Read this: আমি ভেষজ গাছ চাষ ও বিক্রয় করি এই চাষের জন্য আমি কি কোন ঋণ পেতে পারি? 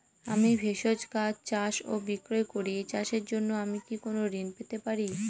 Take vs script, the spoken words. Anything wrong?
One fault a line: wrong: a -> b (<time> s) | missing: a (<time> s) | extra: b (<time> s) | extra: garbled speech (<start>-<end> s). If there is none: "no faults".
no faults